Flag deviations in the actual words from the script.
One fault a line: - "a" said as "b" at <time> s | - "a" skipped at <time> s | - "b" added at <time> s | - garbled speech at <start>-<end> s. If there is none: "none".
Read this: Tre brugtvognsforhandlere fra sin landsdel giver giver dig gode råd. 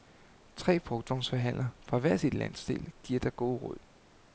- "hver" added at 2.0 s
- "giver" skipped at 3.2 s